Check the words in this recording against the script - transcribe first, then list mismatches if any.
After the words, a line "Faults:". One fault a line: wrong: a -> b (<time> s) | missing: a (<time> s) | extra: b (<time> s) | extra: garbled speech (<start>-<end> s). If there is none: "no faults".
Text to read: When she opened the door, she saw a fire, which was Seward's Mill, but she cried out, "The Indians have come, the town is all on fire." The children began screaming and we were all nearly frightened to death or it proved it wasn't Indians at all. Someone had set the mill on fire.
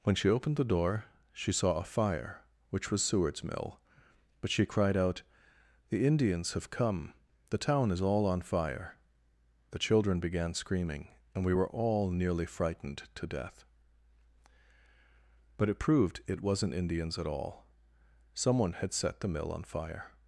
When she opened the door, she saw a fire, which was Seward's Mill, but she cried out, "The Indians have come, the town is all on fire." The children began screaming and we were all nearly frightened to death but it proved it wasn't Indians at all. Someone had set the mill on fire.
Faults:
wrong: or -> but (15.6 s)